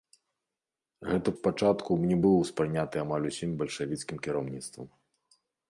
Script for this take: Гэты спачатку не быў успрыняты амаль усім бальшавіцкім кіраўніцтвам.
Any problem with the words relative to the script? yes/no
no